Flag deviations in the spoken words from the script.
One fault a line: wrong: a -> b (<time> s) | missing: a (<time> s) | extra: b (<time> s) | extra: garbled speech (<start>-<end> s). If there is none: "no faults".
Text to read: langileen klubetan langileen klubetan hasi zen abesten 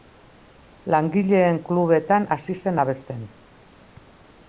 missing: langileen klubetan (2.2 s)